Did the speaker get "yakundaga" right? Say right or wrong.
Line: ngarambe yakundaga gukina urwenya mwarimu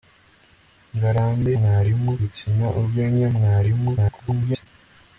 wrong